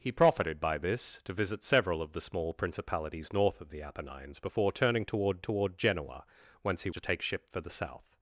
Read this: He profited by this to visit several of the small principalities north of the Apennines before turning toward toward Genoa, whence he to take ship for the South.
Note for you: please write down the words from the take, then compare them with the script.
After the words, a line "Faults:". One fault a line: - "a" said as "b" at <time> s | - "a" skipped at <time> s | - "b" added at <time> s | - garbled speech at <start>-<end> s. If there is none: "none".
He profited by this to visit several of the small principalities north of the Apennines before turning toward toward Genoa, whence he to take ship for the South.
Faults:
none